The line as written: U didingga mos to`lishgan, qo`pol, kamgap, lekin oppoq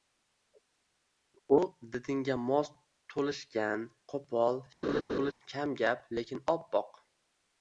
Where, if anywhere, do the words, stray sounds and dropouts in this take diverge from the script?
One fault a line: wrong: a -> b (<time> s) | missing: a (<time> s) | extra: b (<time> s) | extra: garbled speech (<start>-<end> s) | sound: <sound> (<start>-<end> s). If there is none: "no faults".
sound: laugh (4.8-5.3 s)